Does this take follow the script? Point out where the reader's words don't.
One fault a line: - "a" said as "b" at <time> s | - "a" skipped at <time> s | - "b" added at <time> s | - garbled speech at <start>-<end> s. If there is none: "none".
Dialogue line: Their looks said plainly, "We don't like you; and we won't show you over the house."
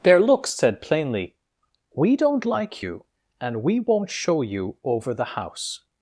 none